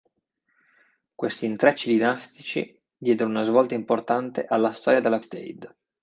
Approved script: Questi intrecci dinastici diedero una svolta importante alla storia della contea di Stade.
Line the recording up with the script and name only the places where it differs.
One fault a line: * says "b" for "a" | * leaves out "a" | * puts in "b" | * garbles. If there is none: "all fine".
* leaves out "contea di"